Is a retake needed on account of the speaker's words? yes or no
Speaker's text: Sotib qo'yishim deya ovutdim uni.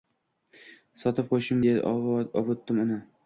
no